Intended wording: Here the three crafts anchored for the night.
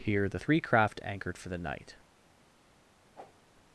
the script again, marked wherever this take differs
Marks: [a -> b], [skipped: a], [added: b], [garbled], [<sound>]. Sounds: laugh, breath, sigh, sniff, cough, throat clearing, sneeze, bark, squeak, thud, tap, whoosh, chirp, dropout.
Here the three [crafts -> craft] anchored for the night. [whoosh]